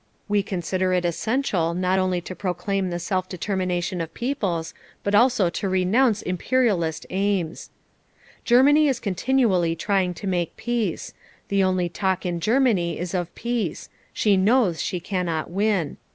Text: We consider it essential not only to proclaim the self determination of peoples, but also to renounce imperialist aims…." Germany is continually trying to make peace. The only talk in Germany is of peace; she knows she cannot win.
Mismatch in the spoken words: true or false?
false